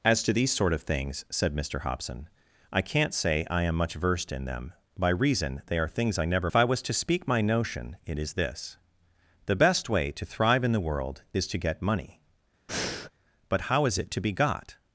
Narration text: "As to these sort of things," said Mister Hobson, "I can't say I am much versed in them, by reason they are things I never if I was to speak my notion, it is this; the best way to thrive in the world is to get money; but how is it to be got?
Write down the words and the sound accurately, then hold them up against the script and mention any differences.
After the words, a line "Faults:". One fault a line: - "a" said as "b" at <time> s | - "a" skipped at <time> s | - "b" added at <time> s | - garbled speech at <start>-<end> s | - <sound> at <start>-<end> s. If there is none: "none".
"As to these sort of things," said Mister Hobson, "I can't say I am much versed in them, by reason they are things I never if I was to speak my notion, it is this; the best way to thrive in the world is to get money; but how is it to be got?
Faults:
- breath at 12.7-13.1 s